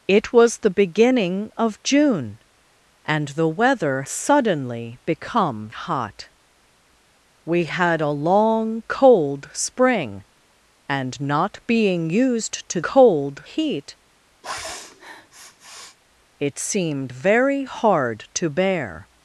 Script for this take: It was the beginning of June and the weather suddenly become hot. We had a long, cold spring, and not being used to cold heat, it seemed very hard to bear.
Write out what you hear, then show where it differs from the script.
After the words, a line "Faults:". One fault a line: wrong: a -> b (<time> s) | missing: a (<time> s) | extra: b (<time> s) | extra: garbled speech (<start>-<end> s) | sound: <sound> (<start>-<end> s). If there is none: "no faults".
It was the beginning of June and the weather suddenly become hot. We had a long, cold spring, and not being used to cold heat, it seemed very hard to bear.
Faults:
sound: sniff (14.4-16.0 s)